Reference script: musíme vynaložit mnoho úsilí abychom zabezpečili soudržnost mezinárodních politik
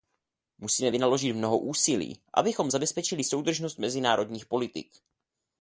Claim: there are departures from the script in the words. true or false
false